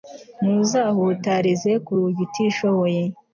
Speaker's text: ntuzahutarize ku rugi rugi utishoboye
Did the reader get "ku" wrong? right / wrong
right